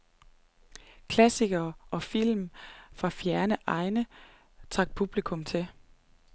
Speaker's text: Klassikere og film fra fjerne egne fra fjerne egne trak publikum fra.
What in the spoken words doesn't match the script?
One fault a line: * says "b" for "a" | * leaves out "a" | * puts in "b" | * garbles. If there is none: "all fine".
* leaves out "fra fjerne egne"
* says "til" for "fra"